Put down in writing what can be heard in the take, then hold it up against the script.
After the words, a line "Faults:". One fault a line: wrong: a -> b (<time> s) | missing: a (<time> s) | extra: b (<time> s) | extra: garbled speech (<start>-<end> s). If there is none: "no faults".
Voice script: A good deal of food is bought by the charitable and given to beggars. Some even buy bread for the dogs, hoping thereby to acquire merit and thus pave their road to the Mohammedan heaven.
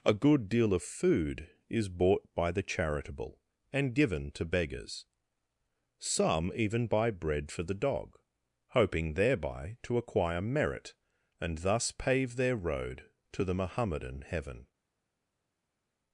A good deal of food is bought by the charitable and given to beggars. Some even buy bread for the dog, hoping thereby to acquire merit and thus pave their road to the Mohammedan heaven.
Faults:
wrong: dogs -> dog (7.8 s)